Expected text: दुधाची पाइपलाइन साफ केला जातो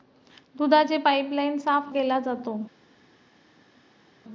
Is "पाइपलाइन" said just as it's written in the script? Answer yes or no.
yes